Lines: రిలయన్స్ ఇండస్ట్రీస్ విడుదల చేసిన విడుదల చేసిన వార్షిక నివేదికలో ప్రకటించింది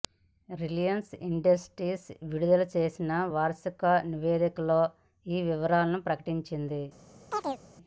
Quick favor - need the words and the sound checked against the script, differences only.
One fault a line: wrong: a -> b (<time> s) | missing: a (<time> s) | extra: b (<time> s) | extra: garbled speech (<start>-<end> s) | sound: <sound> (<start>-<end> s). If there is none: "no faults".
wrong: విడుదల చేసిన వార్షిక నివేదికలో -> వార్షిక నివేదికలో ఈ వివరాలను (3.3 s)
sound: chirp (7.3-7.6 s)